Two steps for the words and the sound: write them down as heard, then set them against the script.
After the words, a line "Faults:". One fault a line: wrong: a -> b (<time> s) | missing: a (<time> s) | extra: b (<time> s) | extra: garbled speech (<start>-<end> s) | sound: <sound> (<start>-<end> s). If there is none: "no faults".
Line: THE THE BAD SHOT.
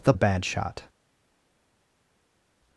THE THE BAD SHOT.
Faults:
no faults